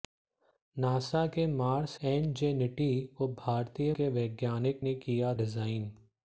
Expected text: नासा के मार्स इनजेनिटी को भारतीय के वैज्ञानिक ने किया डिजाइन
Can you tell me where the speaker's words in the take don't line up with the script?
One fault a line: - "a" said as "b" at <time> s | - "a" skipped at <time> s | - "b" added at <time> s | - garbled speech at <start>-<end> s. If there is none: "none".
none